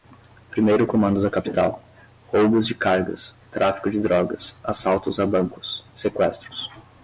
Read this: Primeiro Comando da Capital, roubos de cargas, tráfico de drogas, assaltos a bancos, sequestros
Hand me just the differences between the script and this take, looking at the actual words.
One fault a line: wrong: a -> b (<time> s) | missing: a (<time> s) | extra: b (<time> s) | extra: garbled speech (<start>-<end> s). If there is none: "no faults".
no faults